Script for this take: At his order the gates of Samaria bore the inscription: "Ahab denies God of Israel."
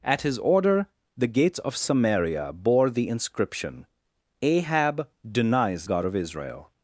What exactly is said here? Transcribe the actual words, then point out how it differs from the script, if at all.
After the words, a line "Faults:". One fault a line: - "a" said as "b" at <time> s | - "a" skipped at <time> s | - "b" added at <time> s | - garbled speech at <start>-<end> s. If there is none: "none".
At his order the gates of Samaria bore the inscription: "Ahab denies God of Israel."
Faults:
none